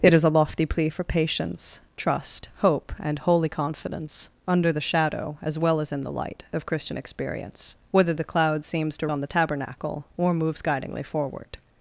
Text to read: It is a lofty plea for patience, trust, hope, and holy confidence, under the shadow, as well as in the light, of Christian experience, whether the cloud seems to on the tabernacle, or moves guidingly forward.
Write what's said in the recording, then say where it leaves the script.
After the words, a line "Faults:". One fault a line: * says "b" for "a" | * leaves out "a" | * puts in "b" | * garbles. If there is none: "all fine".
It is a lofty plea for patience, trust, hope, and holy confidence, under the shadow, as well as in the light, of Christian experience, whether the cloud seems to on the tabernacle, or moves guidingly forward.
Faults:
all fine